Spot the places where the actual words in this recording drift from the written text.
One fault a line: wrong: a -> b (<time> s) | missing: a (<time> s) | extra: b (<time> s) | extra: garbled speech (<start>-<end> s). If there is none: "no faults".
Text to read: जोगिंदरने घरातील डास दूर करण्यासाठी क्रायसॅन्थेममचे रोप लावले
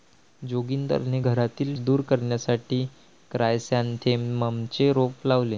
missing: डास (1.8 s)